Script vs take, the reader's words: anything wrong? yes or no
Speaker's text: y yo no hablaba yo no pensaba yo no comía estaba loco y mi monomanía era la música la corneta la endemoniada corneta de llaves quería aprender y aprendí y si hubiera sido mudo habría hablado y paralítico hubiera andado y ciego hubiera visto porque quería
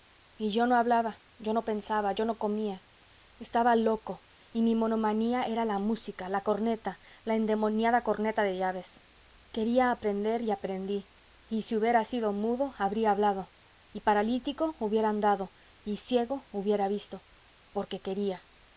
no